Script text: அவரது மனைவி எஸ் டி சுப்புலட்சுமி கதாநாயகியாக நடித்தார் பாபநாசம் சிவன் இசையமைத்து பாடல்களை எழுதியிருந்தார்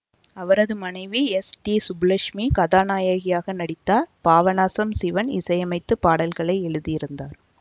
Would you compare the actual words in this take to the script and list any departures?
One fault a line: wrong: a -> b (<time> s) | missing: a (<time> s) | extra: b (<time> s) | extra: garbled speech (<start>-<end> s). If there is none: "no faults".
no faults